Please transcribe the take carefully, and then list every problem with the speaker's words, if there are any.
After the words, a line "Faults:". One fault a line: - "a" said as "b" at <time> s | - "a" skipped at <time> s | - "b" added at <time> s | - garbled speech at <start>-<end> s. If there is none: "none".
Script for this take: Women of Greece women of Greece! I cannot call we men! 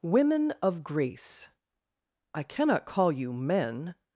Women of Greece! I cannot call you men!
Faults:
- "women of Greece" skipped at 1.5 s
- "we" said as "you" at 3.1 s